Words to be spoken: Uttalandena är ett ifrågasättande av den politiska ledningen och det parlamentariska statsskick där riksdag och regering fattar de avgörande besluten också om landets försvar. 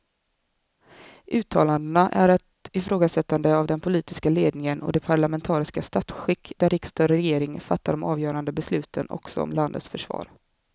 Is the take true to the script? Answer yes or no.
yes